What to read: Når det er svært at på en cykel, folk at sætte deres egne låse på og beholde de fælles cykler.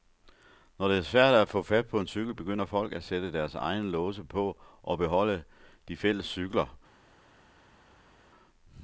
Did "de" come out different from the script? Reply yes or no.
no